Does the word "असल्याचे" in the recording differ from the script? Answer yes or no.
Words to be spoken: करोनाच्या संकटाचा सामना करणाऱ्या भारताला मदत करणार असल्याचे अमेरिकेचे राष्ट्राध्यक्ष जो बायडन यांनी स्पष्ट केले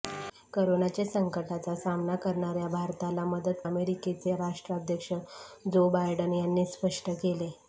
yes